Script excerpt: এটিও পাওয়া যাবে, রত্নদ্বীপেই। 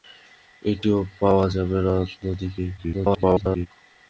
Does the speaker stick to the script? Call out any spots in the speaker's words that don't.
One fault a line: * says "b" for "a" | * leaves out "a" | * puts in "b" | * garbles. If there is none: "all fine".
* garbles